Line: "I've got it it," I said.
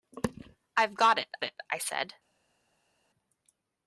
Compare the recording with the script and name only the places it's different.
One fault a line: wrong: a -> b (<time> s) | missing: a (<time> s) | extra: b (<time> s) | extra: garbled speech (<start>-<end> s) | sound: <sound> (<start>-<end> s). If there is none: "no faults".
no faults